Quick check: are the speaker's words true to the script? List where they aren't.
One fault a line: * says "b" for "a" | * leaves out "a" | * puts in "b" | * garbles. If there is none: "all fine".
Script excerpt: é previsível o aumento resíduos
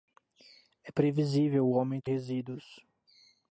all fine